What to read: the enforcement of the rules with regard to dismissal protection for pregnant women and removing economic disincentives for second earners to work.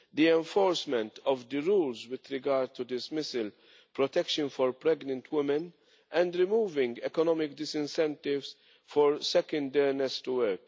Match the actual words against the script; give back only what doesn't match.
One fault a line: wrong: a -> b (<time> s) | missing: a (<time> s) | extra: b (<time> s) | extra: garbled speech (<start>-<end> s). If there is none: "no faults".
no faults